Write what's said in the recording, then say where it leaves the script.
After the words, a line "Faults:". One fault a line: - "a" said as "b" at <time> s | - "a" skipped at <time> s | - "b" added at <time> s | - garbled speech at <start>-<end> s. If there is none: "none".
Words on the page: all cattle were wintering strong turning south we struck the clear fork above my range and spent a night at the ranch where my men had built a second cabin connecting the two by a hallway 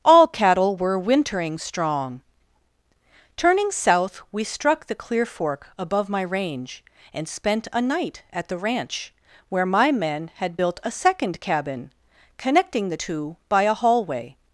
all cattle were wintering strong turning south we struck the clear fork above my range and spent a night at the ranch where my men had built a second cabin connecting the two by a hallway
Faults:
none